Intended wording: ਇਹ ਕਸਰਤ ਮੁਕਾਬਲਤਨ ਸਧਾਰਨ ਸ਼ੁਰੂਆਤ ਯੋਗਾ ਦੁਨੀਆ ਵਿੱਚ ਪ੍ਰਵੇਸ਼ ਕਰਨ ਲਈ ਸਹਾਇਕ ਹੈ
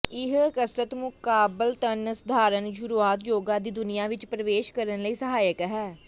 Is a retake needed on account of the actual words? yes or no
yes